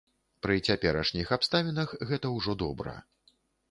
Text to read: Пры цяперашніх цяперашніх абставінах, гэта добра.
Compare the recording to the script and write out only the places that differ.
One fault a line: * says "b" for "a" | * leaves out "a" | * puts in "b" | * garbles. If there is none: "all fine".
* leaves out "цяперашніх"
* puts in "ўжо"